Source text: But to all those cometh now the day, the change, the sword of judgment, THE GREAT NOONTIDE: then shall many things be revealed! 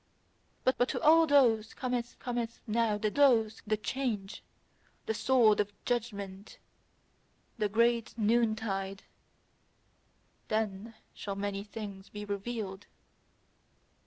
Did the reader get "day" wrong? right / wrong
wrong